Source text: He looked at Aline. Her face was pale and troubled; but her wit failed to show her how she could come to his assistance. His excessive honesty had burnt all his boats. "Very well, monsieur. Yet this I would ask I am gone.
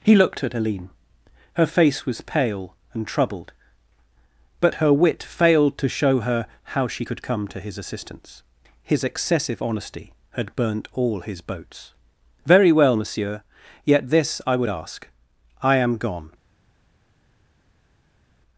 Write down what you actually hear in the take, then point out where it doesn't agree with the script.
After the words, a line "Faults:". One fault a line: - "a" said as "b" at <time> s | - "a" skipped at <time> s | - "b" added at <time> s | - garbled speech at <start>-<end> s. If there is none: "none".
He looked at Aline. Her face was pale and troubled; but her wit failed to show her how she could come to his assistance. His excessive honesty had burnt all his boats. "Very well, monsieur. Yet this I would ask I am gone.
Faults:
none